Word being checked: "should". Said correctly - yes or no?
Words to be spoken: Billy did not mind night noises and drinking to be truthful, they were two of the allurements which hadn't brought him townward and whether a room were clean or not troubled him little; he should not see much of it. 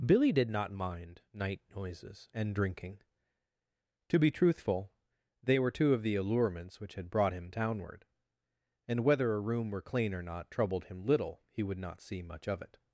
no